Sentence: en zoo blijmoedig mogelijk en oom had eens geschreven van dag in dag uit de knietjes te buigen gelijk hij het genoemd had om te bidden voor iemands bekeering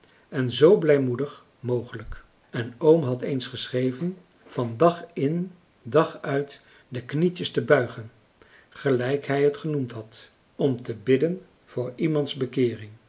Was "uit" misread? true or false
false